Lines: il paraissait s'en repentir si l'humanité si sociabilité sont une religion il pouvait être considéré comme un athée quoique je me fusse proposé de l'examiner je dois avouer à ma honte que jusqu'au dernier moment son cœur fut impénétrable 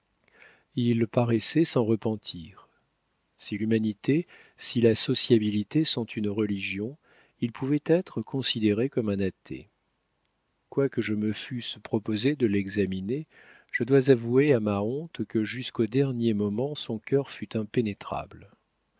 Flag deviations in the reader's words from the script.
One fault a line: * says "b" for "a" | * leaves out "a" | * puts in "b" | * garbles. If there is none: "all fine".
* puts in "la"